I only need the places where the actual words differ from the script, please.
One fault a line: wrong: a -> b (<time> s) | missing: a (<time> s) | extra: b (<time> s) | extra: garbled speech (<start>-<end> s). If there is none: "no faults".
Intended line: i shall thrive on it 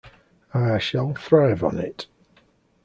no faults